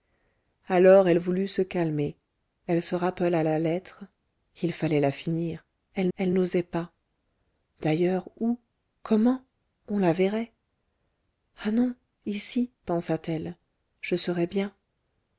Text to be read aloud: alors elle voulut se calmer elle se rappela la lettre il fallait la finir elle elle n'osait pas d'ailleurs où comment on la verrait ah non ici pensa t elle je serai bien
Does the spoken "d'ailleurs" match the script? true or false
true